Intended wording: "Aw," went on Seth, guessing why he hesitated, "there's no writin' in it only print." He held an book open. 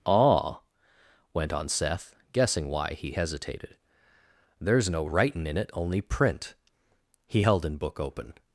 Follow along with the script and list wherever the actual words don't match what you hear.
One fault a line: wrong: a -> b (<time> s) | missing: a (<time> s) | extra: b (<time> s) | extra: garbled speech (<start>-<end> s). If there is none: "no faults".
no faults